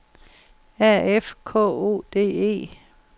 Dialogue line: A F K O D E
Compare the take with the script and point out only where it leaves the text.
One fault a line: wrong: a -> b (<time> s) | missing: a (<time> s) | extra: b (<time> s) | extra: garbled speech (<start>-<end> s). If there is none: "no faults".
no faults